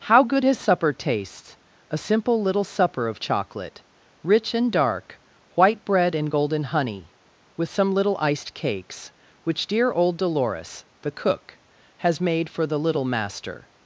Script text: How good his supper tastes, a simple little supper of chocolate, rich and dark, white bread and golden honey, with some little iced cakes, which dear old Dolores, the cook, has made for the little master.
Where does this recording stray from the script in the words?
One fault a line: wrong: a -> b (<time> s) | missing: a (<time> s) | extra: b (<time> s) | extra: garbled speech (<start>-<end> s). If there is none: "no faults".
no faults